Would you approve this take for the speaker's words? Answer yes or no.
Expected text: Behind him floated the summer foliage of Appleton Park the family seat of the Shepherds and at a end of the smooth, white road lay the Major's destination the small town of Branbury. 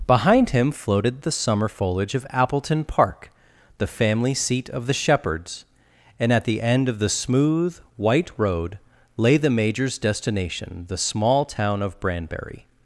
no